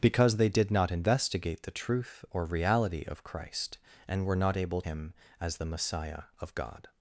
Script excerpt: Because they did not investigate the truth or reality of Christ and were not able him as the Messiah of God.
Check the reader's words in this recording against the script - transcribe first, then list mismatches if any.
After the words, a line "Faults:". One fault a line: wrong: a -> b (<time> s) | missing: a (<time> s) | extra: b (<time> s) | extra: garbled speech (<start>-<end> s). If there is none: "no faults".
Because they did not investigate the truth or reality of Christ and were not able him as the Messiah of God.
Faults:
no faults